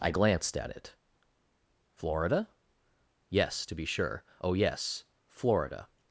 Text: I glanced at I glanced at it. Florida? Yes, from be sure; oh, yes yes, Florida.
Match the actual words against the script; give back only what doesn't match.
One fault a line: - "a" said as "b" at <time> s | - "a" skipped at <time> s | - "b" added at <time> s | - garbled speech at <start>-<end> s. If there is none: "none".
- "I glanced at" skipped at 0.7 s
- "from" said as "to" at 3.6 s
- "yes" skipped at 5.0 s